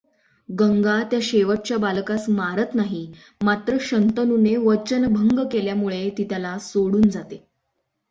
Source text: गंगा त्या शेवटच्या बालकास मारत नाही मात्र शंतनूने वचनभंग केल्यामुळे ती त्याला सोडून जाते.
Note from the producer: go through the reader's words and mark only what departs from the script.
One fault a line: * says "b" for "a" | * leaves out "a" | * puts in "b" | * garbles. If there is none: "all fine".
all fine